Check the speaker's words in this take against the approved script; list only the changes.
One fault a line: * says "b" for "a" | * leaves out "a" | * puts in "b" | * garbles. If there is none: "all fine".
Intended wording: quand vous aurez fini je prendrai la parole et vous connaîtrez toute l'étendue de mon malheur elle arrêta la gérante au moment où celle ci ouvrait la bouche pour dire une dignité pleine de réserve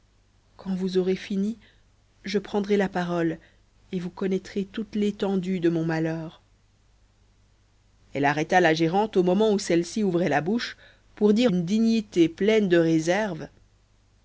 all fine